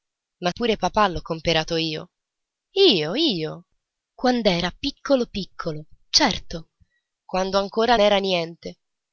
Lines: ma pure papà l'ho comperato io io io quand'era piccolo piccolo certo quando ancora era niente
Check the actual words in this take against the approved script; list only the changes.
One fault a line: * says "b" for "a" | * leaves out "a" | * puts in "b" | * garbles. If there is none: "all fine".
all fine